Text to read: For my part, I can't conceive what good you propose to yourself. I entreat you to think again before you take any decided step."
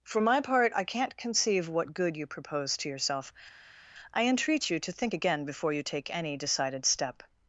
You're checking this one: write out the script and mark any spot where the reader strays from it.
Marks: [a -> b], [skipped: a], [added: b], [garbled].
For my part, I can't conceive what good you propose to yourself. I entreat you to think again before you take any decided step."